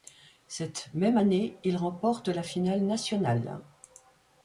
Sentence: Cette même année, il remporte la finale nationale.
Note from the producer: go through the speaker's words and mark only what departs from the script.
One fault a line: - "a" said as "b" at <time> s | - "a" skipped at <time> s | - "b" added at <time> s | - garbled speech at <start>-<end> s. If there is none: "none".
none